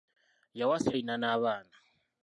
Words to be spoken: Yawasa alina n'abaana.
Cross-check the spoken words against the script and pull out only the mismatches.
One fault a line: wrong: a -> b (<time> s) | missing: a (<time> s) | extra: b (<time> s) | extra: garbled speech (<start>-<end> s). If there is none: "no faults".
no faults